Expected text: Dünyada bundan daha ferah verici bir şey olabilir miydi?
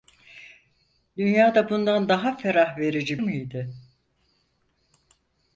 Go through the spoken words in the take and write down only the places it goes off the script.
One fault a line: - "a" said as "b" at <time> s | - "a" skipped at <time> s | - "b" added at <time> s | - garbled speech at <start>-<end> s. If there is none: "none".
- "bir şey olabilir" skipped at 3.2 s